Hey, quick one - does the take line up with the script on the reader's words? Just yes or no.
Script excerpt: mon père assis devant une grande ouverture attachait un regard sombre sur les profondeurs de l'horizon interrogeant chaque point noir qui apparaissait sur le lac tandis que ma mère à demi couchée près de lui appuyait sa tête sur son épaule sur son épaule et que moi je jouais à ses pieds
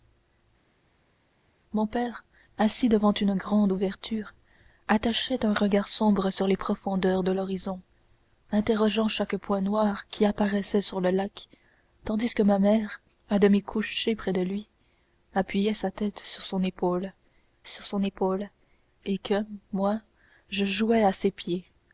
yes